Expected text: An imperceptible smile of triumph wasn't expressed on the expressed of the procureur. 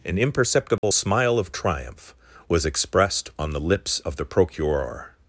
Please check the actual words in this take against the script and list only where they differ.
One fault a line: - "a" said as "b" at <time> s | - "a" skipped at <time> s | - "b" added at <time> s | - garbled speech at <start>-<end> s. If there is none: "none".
- "wasn't" said as "was" at 2.5 s
- "expressed" said as "lips" at 3.6 s